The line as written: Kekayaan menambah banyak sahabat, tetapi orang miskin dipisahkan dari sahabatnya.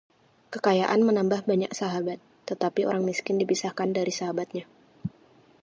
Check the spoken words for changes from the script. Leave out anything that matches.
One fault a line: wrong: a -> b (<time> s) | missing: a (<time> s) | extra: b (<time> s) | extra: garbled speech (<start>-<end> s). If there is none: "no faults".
no faults